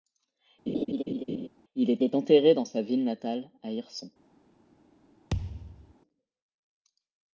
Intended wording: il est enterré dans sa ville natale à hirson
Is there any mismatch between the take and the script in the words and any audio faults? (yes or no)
yes